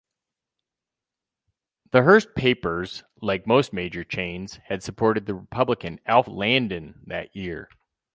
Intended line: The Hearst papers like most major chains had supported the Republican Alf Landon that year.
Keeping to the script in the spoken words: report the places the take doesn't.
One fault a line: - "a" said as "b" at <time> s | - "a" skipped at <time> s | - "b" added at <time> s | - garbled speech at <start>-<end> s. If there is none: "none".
none